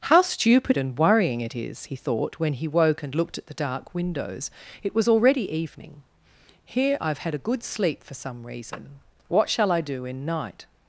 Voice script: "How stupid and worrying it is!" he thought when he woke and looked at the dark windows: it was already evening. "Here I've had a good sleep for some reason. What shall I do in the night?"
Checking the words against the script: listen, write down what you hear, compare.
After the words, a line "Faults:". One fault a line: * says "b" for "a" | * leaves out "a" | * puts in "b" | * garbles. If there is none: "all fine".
"How stupid and worrying it is!" he thought when he woke and looked at the dark windows: it was already evening. "Here I've had a good sleep for some reason. What shall I do in night?"
Faults:
* leaves out "the"